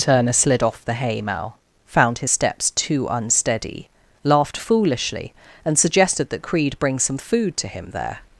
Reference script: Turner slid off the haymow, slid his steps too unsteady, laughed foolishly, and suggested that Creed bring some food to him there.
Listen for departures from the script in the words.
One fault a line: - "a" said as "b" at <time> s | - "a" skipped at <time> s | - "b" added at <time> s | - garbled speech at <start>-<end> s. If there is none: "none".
- "slid" said as "found" at 1.9 s